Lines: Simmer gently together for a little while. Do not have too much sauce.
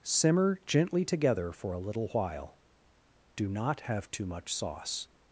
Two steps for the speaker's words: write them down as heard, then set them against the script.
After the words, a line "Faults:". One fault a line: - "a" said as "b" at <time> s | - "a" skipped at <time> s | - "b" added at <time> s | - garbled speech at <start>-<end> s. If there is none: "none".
Simmer gently together for a little while. Do not have too much sauce.
Faults:
none